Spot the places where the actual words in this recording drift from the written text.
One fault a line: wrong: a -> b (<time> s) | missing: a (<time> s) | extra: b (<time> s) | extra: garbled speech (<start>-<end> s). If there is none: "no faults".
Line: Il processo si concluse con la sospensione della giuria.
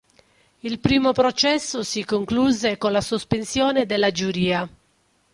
extra: primo (0.8 s)